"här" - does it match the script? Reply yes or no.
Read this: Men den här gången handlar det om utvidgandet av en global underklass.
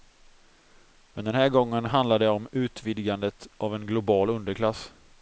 yes